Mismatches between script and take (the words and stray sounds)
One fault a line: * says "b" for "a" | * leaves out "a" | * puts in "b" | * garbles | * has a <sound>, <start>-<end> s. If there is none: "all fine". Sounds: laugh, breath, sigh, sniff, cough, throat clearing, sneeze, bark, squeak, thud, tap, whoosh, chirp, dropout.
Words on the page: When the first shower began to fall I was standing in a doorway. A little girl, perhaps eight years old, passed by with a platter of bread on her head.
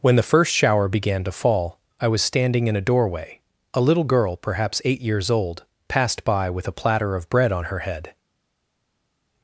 all fine